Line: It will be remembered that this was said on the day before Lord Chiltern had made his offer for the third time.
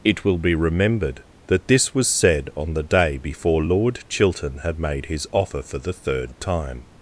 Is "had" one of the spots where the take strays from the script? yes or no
no